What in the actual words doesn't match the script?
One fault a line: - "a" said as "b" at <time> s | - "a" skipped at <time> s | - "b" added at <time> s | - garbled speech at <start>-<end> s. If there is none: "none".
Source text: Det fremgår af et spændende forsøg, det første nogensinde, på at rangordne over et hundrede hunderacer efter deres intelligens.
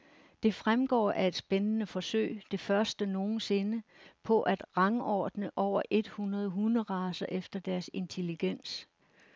none